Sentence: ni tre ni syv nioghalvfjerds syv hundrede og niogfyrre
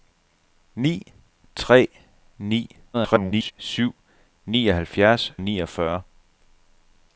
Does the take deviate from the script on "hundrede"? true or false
true